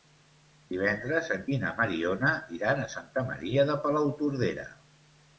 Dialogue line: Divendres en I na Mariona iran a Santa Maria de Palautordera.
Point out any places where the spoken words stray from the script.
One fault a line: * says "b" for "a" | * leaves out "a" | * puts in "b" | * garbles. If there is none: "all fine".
all fine